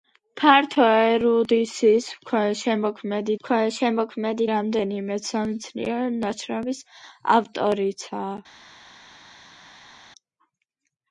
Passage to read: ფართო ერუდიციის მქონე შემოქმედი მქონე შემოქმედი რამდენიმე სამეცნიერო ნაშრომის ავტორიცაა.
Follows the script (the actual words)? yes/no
yes